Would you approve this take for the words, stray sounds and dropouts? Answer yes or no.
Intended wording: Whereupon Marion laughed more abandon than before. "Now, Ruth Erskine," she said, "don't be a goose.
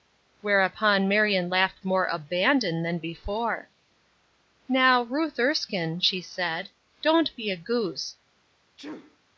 no